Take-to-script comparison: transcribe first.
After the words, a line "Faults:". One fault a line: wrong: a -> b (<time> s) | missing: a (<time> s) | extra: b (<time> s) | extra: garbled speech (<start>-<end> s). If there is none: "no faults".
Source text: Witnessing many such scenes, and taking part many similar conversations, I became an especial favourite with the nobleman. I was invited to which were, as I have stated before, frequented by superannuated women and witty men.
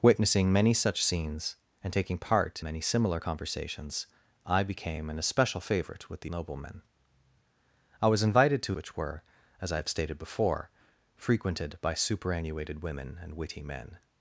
Witnessing many such scenes, and taking part many similar conversations, I became an especial favourite with the nobleman. I was invited to which were, as I have stated before, frequented by superannuated women and witty men.
Faults:
no faults